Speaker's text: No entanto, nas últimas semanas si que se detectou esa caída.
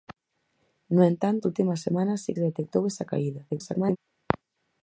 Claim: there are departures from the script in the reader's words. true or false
true